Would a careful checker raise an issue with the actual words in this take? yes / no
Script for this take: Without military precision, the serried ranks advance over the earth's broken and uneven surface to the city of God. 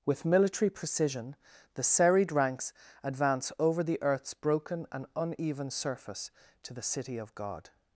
yes